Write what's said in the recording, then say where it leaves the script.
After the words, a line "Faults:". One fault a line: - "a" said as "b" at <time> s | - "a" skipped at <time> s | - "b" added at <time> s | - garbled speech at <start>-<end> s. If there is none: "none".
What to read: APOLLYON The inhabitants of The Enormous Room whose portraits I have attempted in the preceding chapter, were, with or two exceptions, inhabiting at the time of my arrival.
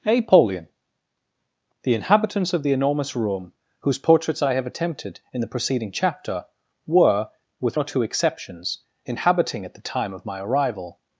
APOLLYON The inhabitants of The Enormous Room whose portraits I have attempted in the preceding chapter, were, with or two exceptions, inhabiting at the time of my arrival.
Faults:
none